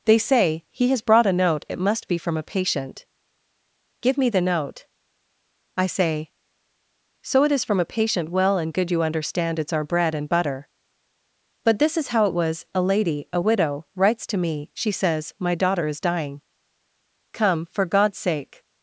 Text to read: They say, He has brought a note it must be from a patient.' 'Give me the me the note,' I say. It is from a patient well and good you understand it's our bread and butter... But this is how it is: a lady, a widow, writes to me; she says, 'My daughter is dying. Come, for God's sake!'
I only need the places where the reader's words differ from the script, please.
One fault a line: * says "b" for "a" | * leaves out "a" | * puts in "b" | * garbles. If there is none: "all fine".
* leaves out "me the"
* puts in "So"
* says "was" for "is"